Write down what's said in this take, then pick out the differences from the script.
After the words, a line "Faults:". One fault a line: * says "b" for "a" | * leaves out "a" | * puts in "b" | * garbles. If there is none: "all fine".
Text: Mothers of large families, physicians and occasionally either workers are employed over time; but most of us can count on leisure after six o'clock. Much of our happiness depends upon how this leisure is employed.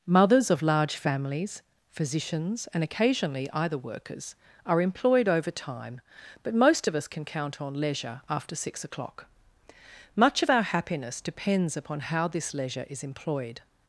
Mothers of large families, physicians and occasionally either workers are employed over time; but most of us can count on leisure after six o'clock. Much of our happiness depends upon how this leisure is employed.
Faults:
all fine